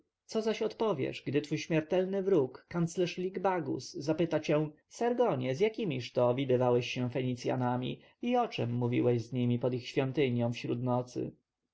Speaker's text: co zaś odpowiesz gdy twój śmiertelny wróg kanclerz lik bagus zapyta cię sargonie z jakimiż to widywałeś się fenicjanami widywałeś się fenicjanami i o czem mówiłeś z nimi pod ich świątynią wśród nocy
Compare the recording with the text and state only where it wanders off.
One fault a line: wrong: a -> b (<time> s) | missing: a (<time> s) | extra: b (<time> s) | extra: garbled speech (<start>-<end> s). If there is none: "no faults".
missing: widywałeś się fenicjanami (8.0 s)